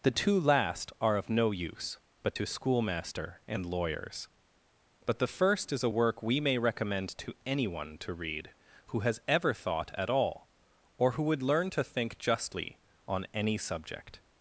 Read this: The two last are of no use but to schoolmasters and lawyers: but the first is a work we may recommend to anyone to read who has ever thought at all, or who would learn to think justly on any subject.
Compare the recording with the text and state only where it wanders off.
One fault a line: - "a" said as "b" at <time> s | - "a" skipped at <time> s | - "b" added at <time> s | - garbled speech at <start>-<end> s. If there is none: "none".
- "schoolmasters" said as "schoolmaster" at 2.5 s